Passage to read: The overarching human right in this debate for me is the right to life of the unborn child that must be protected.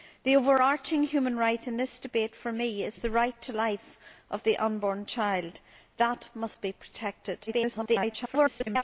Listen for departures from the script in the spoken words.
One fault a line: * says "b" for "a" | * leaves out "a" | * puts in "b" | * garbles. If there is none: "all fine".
* garbles